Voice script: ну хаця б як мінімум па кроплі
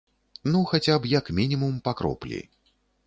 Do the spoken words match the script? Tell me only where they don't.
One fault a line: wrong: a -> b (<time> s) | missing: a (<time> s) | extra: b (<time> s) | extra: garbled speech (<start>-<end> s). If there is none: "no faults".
no faults